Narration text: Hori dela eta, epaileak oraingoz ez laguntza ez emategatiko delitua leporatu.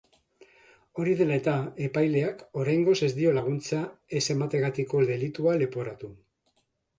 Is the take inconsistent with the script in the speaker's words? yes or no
yes